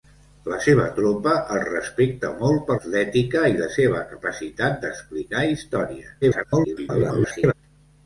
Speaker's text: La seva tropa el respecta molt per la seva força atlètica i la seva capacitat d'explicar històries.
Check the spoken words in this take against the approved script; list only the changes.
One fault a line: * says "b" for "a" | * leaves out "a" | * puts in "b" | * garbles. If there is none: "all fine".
* leaves out "la seva força"
* garbles